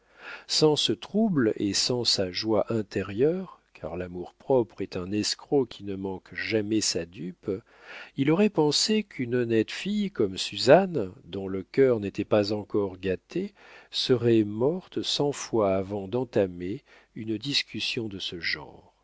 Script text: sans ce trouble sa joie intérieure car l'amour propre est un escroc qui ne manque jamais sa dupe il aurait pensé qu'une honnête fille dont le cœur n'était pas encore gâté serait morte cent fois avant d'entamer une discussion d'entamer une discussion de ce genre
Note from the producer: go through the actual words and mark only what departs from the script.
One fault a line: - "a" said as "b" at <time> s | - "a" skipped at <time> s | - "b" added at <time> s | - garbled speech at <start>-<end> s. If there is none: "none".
- "et sans" added at 1.6 s
- "comme suzanne" added at 10.1 s
- "d'entamer une discussion" skipped at 18.1 s